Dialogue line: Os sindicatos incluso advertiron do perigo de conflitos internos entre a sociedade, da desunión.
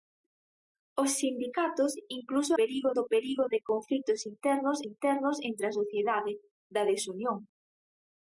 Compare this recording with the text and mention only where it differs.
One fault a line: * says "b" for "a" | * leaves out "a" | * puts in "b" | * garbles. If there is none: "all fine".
* says "perigo" for "advertiron"
* puts in "internos"